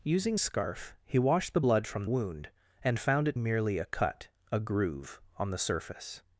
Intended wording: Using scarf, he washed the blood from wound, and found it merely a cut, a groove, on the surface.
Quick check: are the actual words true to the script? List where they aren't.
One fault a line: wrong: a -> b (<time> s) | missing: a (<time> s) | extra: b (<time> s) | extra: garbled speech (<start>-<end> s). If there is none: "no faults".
no faults